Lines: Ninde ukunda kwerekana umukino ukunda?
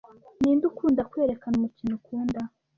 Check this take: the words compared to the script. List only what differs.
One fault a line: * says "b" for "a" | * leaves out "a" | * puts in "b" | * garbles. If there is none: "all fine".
all fine